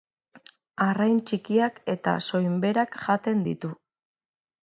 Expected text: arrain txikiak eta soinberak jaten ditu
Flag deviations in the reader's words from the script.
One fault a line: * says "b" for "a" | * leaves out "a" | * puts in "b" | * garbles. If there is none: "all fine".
all fine